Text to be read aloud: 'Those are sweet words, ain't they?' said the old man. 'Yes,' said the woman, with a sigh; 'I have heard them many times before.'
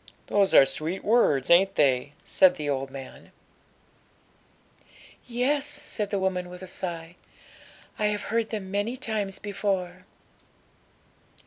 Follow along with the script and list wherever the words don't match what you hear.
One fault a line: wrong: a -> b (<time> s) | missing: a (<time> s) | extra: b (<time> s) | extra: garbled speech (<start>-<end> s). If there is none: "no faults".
no faults